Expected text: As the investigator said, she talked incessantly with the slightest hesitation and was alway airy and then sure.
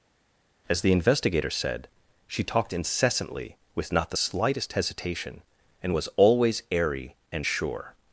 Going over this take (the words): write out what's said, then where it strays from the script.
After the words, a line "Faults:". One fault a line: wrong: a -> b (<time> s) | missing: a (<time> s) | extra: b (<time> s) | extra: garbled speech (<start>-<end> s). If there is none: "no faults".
As the investigator said, she talked incessantly with not the slightest hesitation and was always airy and sure.
Faults:
extra: not (3.9 s)
wrong: alway -> always (6.2 s)
missing: then (7.5 s)